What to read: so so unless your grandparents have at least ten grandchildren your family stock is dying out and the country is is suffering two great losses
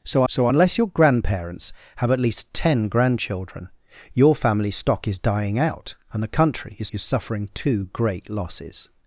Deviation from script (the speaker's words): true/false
false